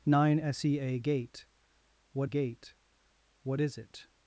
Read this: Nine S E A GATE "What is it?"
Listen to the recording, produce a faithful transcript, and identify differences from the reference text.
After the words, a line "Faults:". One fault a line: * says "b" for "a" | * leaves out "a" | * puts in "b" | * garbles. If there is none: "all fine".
Nine S E A GATE "What GATE What is it?"
Faults:
* puts in "GATE What"